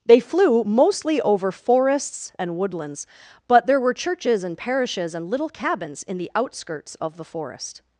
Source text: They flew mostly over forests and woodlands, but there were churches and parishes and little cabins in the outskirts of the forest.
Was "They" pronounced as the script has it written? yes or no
yes